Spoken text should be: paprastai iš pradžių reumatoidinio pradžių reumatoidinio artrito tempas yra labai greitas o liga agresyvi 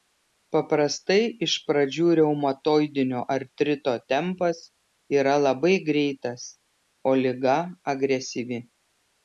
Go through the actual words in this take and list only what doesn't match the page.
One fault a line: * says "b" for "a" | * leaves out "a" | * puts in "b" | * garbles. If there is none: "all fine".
* leaves out "pradžių reumatoidinio"